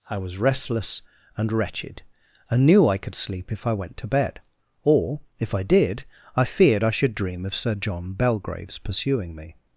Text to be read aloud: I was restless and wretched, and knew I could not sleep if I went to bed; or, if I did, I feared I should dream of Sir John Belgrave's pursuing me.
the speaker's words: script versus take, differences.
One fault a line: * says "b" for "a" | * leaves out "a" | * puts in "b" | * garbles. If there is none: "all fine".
* leaves out "not"